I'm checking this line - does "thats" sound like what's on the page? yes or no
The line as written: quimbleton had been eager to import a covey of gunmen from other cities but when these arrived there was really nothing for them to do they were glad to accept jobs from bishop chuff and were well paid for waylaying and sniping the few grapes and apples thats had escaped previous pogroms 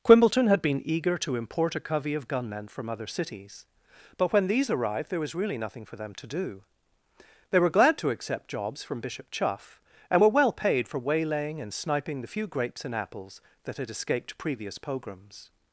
no